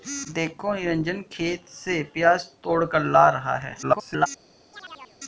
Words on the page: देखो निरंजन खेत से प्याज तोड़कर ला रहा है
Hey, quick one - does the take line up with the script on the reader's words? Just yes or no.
no